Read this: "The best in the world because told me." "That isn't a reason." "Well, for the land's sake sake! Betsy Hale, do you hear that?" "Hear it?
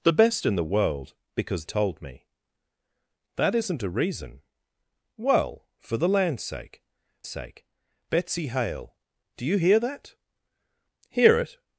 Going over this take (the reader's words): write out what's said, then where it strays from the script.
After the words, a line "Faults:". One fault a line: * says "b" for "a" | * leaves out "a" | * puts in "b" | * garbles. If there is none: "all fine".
"The best in the world because told me." "That isn't a reason." "Well, for the land's sake sake! Betsy Hale, do you hear that?" "Hear it?
Faults:
all fine